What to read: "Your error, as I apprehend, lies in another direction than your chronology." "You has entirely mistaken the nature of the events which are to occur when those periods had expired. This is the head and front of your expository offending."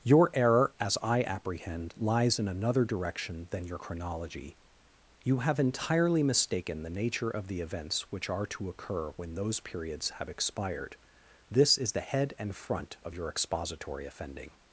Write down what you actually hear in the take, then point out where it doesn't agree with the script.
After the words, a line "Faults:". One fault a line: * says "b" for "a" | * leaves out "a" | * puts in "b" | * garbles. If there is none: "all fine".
"Your error, as I apprehend, lies in another direction than your chronology." "You have entirely mistaken the nature of the events which are to occur when those periods have expired. This is the head and front of your expository offending."
Faults:
* says "have" for "has"
* says "have" for "had"